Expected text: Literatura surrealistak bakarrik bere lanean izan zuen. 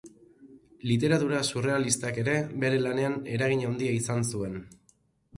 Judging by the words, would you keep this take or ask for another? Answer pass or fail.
fail